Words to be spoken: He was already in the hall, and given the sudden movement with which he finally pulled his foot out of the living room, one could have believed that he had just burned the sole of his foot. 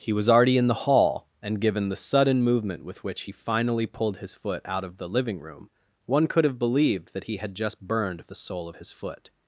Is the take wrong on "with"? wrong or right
right